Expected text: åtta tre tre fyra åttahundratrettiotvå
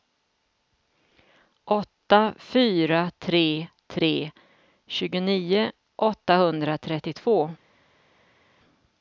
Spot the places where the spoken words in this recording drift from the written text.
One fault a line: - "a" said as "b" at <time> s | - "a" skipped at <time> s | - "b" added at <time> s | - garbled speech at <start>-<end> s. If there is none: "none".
- "fyra" added at 2.4 s
- "fyra" said as "tjugonio" at 4.9 s